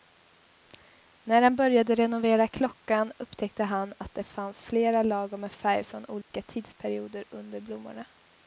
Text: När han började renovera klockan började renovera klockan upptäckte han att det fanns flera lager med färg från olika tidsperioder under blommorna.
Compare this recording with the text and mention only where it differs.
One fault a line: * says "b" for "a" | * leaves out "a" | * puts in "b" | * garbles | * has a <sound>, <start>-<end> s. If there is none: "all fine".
* leaves out "började renovera klockan"
* has a dropout, 6.2-6.3 s